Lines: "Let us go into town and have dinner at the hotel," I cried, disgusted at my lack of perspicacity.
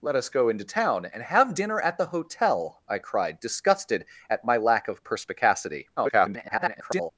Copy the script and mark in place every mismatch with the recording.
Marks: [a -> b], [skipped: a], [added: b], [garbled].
"Let us go into town and have dinner at the hotel," I cried, disgusted at my lack of perspicacity. [garbled]